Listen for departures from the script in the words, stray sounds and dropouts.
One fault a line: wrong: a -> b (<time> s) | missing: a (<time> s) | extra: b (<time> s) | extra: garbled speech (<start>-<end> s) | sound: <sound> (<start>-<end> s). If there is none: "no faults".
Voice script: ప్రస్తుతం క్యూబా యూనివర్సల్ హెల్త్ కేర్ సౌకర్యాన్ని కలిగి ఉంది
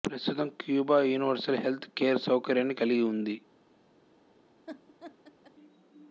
sound: laugh (4.7-5.5 s)